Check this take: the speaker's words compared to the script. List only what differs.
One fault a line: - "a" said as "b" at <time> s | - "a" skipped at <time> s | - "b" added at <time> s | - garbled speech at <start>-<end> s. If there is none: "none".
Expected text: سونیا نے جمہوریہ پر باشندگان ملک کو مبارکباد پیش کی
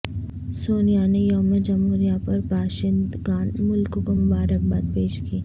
- "یوم" added at 1.2 s